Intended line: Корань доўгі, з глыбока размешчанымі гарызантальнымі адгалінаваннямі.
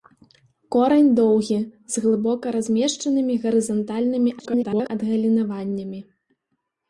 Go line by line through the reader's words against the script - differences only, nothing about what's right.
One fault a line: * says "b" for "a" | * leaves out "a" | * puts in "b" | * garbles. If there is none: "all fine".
* garbles